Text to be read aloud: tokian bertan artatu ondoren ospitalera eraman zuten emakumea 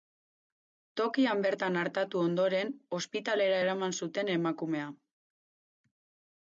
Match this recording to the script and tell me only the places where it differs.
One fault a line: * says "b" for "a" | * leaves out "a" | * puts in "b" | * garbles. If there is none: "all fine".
all fine